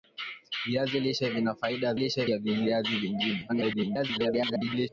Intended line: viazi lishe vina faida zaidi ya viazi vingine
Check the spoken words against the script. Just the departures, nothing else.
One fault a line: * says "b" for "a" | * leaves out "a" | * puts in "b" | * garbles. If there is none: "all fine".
* says "lishe" for "zaidi"
* garbles